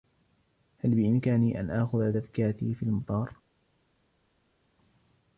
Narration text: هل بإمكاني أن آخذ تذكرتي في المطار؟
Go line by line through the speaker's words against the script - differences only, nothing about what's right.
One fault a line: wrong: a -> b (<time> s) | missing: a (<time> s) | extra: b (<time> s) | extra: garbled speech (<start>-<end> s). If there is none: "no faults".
no faults